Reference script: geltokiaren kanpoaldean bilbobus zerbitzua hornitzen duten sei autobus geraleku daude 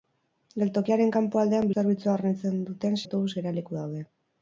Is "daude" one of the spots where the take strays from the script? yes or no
no